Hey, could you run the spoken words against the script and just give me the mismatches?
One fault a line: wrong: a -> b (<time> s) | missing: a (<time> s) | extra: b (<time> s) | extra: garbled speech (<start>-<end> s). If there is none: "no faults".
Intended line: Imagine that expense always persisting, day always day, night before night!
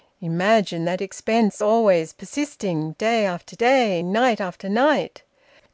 wrong: always -> after (3.2 s)
wrong: before -> after (4.4 s)